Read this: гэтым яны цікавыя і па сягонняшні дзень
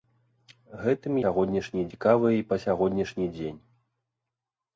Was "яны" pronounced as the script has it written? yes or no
no